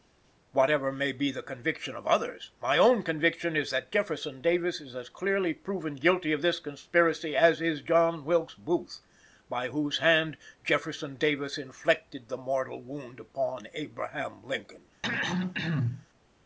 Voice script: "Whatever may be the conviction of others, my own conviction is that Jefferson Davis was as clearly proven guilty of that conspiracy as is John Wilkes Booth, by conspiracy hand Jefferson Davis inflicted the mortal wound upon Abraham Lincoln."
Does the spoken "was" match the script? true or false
false